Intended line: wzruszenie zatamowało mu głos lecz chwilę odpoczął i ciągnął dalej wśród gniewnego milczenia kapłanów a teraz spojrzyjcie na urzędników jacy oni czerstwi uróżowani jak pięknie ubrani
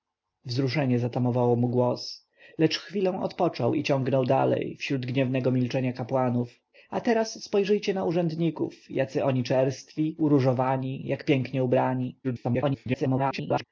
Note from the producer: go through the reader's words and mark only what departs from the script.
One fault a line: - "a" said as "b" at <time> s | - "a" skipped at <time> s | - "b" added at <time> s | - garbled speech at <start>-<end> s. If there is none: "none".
- garbled speech at 12.2-13.6 s